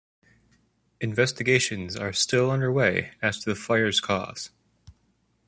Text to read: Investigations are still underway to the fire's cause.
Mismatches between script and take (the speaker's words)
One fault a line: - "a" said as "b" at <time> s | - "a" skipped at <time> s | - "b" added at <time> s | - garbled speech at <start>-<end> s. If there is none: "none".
- "as" added at 3.2 s